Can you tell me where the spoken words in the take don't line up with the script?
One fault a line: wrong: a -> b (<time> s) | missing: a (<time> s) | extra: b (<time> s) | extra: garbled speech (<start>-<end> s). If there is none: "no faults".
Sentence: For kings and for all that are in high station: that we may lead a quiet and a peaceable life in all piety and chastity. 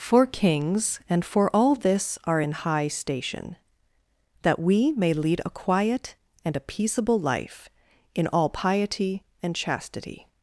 wrong: that -> this (1.8 s)